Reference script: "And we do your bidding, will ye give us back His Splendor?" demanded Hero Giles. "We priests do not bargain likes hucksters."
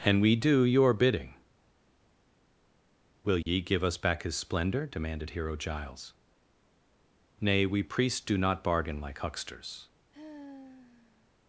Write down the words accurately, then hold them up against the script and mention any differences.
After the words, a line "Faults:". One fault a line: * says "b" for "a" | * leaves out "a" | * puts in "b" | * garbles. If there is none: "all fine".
"And we do your bidding, will ye give us back His Splendor?" demanded Hero Giles. "Nay we priests do not bargain like hucksters."
Faults:
* puts in "Nay"
* says "like" for "likes"